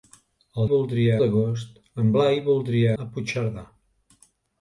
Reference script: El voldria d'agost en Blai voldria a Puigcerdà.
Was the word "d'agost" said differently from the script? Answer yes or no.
no